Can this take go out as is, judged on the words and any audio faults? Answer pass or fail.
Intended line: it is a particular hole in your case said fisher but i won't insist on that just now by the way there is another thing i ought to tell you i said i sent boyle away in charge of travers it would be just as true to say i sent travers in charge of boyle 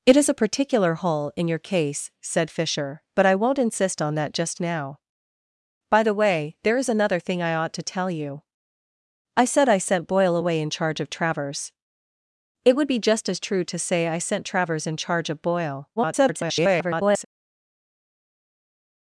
fail